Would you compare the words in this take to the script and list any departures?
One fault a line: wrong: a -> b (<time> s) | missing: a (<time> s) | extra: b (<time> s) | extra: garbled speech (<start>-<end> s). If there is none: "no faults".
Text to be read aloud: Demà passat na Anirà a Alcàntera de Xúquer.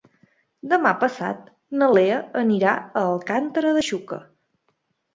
extra: Lea (2.0 s)